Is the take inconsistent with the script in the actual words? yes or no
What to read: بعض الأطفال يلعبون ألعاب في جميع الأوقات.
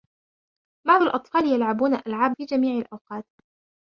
no